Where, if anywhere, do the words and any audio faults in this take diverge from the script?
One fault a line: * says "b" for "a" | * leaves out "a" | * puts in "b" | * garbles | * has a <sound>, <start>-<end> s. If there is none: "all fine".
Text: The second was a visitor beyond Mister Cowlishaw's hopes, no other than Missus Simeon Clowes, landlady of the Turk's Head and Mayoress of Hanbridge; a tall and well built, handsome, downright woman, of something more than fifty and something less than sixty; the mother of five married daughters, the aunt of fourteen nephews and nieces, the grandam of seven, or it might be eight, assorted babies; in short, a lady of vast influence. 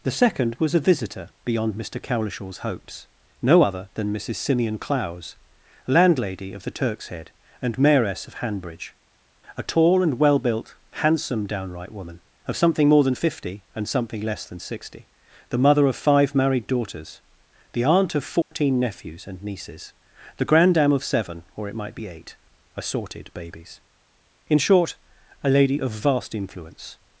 * has a dropout, 18.4-18.5 s